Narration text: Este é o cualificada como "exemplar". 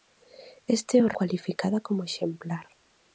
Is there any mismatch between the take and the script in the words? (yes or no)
no